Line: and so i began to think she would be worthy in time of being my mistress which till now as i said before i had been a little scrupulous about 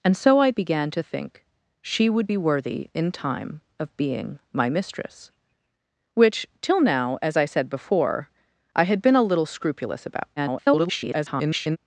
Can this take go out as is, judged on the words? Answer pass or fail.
fail